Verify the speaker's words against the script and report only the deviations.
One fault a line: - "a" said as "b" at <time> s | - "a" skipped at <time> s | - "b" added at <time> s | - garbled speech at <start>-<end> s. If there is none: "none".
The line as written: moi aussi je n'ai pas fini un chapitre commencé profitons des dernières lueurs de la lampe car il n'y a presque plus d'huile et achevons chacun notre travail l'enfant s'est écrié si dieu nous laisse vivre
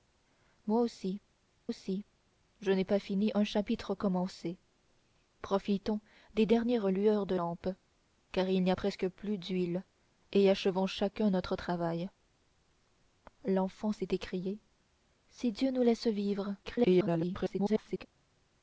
- "aussi" added at 1.7 s
- "la" skipped at 7.4 s
- garbled speech at 16.6-18.1 s